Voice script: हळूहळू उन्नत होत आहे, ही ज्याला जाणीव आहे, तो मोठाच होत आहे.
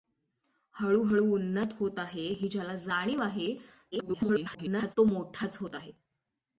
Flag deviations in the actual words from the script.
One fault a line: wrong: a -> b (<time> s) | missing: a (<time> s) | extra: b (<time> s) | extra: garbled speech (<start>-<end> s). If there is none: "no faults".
extra: garbled speech (3.9-4.9 s)